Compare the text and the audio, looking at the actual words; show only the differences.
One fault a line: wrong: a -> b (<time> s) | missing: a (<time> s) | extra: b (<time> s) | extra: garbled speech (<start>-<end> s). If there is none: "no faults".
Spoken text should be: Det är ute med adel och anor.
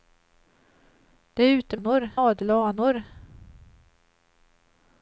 wrong: med -> anor (1.7 s)